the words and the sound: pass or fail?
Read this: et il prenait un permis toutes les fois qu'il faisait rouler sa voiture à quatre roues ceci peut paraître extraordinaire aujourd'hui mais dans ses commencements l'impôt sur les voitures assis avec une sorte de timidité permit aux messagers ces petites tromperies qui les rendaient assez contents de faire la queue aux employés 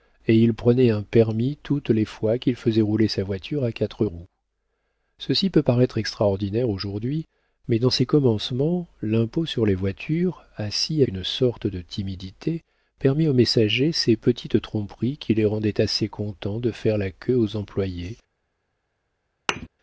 fail